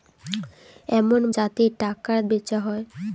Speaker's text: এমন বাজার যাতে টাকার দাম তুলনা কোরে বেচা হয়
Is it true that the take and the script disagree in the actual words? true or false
true